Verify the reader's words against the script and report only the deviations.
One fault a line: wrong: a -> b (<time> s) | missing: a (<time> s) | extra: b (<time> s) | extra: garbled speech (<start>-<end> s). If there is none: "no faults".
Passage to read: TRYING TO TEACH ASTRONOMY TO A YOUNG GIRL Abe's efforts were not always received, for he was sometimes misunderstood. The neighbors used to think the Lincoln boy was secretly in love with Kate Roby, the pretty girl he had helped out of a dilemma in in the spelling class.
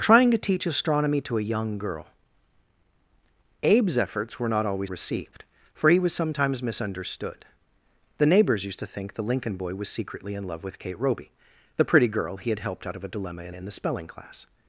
no faults